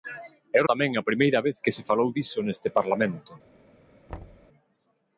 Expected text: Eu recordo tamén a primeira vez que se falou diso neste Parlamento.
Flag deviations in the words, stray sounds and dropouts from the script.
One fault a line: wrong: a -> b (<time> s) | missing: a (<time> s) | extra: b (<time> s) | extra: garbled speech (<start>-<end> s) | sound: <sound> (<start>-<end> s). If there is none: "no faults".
missing: recordo (0.6 s)
sound: thud (4.1-4.5 s)